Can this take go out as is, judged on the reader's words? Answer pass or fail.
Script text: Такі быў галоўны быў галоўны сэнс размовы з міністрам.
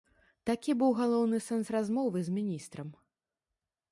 fail